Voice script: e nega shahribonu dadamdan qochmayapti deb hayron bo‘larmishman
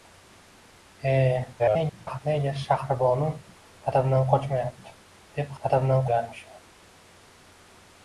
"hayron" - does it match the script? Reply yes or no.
no